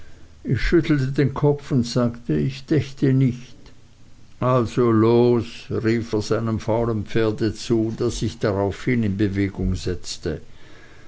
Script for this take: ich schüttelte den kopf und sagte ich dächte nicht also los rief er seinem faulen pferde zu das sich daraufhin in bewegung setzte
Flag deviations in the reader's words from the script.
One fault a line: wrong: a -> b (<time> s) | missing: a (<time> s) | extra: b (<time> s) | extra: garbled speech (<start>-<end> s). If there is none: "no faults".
no faults